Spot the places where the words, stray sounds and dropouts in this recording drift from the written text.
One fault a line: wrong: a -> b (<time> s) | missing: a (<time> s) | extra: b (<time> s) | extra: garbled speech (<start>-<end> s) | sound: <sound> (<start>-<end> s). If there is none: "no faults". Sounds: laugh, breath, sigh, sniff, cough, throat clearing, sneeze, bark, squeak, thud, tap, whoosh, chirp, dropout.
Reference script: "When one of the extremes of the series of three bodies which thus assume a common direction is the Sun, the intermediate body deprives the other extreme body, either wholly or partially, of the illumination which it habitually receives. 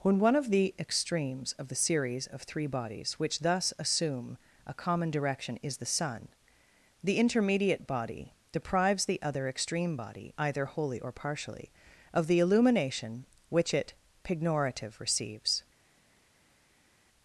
wrong: habitually -> pignorative (14.2 s)